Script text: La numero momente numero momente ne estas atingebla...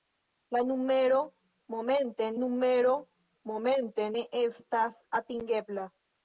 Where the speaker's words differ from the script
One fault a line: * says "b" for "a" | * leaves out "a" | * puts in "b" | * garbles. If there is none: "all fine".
all fine